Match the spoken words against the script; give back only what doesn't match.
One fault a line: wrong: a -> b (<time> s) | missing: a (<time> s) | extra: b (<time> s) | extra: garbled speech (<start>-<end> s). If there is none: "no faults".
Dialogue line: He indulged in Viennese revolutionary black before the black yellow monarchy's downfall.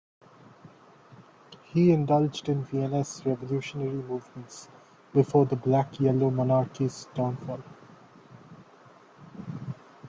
wrong: black -> movements (4.0 s)